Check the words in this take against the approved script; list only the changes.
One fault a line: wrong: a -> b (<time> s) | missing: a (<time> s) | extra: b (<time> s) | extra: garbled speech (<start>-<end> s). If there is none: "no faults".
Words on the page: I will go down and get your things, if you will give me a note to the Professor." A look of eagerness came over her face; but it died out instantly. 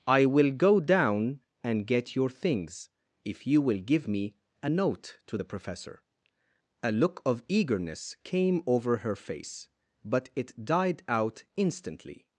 no faults